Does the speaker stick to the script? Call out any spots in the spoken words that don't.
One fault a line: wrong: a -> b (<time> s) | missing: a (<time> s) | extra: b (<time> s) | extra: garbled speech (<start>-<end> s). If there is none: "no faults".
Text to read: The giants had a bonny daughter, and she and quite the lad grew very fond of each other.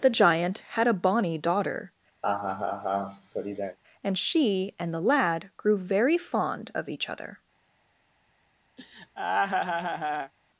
wrong: giants -> giant (0.1 s)
missing: quite (4.9 s)